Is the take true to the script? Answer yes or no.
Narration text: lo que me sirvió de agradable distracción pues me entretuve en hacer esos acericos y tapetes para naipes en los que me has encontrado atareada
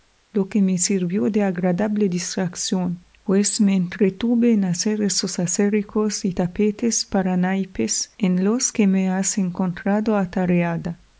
yes